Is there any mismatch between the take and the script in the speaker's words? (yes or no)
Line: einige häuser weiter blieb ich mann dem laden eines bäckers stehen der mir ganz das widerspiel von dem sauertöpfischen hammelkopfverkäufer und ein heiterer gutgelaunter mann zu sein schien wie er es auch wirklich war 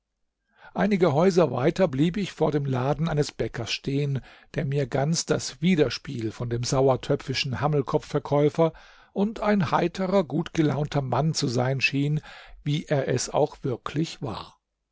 yes